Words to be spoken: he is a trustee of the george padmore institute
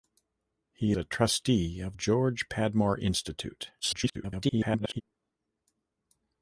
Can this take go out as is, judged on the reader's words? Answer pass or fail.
fail